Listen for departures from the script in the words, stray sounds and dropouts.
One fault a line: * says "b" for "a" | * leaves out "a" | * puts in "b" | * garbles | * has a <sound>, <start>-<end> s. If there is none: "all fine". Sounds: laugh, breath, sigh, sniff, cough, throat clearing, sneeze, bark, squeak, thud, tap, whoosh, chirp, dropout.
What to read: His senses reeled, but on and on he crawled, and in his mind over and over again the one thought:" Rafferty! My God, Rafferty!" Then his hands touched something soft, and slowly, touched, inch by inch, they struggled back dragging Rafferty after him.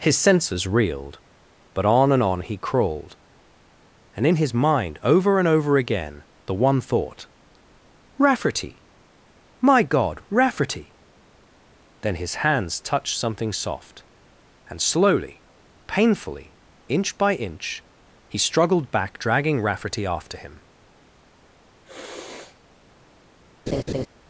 * says "painfully" for "touched"
* says "he" for "they"
* has a sniff, 21.8-22.6 s
* has a laugh, 23.7-24.1 s